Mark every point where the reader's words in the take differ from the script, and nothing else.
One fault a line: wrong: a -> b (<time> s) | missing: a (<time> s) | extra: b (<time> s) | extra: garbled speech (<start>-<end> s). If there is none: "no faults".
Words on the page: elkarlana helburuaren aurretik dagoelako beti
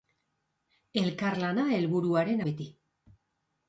missing: aurretik dagoelako (2.4 s)